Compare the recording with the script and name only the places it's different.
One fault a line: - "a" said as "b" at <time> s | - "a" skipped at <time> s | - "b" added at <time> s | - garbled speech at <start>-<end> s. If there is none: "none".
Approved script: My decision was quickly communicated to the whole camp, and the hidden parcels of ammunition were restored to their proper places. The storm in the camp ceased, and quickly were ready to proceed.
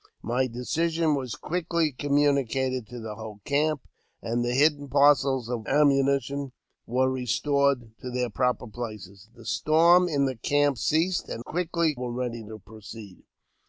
none